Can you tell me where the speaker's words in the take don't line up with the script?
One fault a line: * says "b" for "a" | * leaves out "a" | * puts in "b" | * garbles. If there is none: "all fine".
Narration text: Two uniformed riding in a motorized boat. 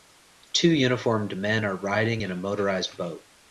* puts in "men are"